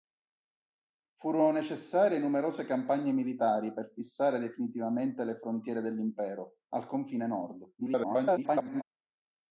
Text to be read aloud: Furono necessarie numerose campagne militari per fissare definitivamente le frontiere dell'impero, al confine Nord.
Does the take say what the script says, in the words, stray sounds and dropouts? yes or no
no